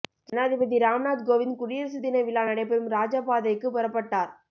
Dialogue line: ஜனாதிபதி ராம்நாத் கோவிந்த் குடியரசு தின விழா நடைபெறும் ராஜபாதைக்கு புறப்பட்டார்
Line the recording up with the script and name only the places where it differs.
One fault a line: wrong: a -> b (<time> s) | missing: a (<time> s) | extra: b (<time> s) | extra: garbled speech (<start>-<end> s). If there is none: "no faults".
no faults